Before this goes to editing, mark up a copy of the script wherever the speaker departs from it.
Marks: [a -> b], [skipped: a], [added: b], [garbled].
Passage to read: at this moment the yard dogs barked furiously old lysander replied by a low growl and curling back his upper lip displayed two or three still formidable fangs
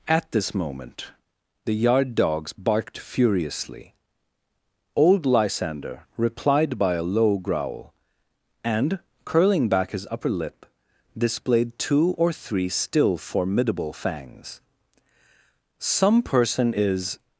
at this moment the yard dogs barked furiously old lysander replied by a low growl and curling back his upper lip displayed two or three still formidable fangs [added: some person is]